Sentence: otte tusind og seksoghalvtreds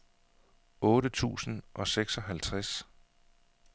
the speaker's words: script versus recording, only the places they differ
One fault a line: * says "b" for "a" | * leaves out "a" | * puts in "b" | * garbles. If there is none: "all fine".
all fine